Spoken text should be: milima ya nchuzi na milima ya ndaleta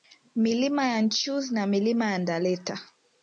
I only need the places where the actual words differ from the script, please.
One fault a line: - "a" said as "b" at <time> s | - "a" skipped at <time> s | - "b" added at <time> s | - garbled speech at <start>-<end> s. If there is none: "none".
none